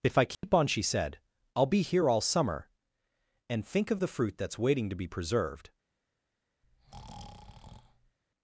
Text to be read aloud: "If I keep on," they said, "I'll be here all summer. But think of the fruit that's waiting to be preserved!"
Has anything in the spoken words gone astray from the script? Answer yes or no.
yes